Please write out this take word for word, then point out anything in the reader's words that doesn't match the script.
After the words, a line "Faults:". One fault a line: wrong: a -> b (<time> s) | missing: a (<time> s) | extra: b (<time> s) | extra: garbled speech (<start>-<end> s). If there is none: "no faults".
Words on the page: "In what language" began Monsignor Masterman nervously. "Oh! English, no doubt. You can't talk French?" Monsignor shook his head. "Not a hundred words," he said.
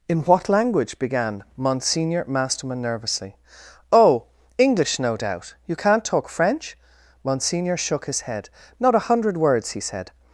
"In what language" began Monsignor Masterman nervously. "Oh! English, no doubt. You can't talk French?" Monsignor shook his head. "Not a hundred words," he said.
Faults:
no faults